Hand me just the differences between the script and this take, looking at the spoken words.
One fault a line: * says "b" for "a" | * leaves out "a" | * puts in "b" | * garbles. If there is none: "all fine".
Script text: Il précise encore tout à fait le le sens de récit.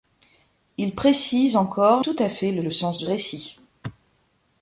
all fine